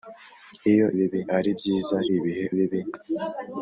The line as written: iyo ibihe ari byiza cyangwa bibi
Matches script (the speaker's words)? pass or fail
fail